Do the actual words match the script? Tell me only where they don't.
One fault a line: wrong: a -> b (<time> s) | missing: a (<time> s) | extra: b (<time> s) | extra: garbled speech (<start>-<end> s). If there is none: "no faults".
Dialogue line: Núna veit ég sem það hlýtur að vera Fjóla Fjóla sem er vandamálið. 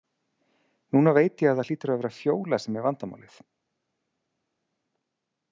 wrong: sem -> að (1.5 s)
missing: Fjóla (2.6 s)